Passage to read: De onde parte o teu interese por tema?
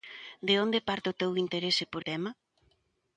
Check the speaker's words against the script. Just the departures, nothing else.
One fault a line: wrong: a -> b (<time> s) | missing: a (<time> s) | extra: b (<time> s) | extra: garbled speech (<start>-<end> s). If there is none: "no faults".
no faults